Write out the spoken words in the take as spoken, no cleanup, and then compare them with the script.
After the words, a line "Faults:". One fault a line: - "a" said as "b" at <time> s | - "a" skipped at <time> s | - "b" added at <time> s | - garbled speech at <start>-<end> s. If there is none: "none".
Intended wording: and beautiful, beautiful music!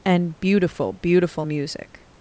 and beautiful, beautiful music!
Faults:
none